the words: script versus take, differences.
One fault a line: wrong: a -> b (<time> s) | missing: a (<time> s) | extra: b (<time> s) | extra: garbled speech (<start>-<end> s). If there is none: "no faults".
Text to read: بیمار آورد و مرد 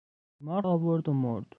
no faults